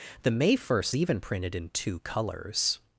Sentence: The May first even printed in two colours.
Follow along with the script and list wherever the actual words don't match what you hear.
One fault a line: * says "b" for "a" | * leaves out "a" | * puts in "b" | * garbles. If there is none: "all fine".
all fine